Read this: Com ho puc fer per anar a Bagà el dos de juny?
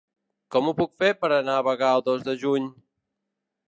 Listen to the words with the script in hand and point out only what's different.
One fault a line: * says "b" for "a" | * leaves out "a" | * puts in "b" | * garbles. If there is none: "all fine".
all fine